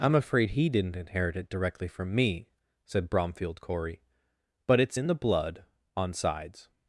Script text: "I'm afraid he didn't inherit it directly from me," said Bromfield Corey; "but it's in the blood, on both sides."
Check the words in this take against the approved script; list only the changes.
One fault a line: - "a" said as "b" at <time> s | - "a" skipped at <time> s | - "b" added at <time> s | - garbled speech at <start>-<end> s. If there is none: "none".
- "both" skipped at 6.1 s